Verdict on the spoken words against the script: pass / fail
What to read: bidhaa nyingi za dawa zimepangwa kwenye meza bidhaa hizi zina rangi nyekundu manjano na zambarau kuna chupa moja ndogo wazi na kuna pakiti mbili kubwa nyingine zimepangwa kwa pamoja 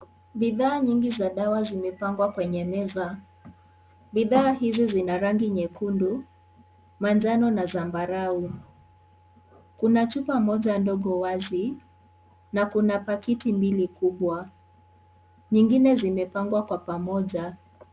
pass